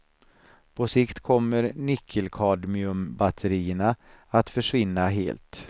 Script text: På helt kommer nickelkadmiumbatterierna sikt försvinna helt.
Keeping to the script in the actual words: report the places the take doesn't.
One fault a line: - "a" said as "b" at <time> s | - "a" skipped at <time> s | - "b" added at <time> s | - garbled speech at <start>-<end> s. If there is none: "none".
- "helt" said as "sikt" at 0.8 s
- "sikt" said as "att" at 4.3 s